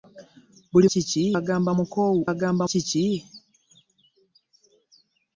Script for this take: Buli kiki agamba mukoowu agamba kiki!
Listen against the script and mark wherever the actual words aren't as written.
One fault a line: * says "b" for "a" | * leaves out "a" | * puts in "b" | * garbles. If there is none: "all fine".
all fine